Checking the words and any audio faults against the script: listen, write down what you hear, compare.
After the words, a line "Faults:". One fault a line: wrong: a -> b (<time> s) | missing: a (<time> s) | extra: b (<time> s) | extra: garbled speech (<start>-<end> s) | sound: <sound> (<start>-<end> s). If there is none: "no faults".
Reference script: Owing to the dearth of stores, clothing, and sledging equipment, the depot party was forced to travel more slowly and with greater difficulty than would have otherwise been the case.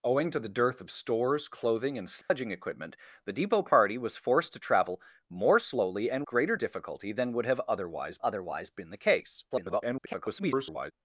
Owing to the dearth of stores, clothing, and sledging equipment, the depot party was forced to travel more slowly and greater difficulty than would have otherwise otherwise been the case. [garbled]
Faults:
sound: dropout (2.2-2.3 s)
missing: with (6.2 s)
extra: otherwise (8.2 s)
extra: garbled speech (9.5-10.9 s)